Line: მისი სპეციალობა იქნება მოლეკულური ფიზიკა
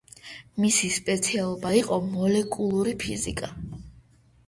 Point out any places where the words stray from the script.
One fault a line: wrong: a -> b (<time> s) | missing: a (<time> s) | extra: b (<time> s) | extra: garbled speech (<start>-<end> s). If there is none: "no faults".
wrong: იქნება -> იყო (1.8 s)